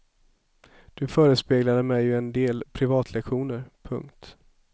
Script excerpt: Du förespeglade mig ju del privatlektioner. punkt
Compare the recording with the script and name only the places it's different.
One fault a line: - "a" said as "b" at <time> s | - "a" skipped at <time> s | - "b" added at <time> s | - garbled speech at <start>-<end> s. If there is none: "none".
- "en" added at 2.2 s